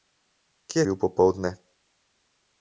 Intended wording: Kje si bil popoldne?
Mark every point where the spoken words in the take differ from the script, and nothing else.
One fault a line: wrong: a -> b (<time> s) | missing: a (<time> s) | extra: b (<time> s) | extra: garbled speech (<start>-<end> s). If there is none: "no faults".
missing: si (0.8 s)